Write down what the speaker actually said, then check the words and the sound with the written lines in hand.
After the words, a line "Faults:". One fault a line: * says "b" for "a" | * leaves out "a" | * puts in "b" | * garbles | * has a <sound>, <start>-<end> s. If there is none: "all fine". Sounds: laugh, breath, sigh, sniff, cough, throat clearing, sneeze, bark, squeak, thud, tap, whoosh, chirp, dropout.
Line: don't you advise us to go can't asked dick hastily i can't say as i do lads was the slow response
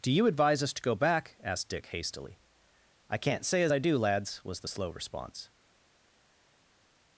do you advise us to go back asked dick hastily i can't say as i do lads was the slow response
Faults:
* says "do" for "don't"
* says "back" for "can't"